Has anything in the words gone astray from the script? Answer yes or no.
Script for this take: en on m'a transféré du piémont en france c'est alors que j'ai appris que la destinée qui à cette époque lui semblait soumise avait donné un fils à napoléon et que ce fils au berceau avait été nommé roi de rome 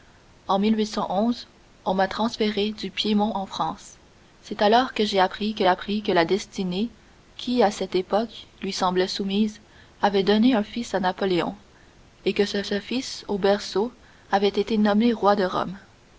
yes